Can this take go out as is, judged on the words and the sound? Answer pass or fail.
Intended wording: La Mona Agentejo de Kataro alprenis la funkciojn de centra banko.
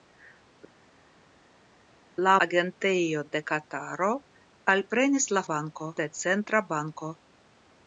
fail